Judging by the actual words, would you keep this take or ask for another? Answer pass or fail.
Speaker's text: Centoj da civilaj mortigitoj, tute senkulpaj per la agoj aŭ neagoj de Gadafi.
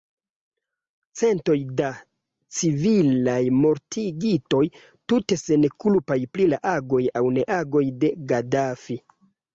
fail